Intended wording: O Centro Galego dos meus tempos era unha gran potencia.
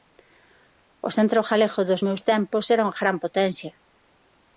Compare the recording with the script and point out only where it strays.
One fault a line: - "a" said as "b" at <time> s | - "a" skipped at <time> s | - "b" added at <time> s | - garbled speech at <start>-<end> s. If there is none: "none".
none